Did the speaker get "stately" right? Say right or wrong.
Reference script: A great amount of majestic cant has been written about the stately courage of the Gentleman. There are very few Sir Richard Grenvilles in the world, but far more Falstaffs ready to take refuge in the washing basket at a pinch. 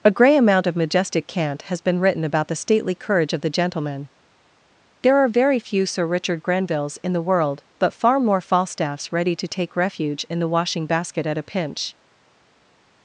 right